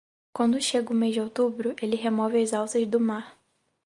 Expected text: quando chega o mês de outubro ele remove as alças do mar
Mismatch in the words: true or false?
false